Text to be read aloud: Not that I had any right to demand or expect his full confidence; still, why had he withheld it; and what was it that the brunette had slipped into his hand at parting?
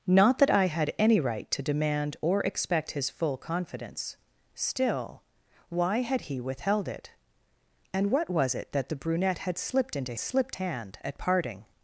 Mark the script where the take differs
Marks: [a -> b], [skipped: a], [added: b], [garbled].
Not that I had any right to demand or expect his full confidence; still, why had he withheld it; and what was it that the brunette had slipped into [his -> slipped] hand at parting?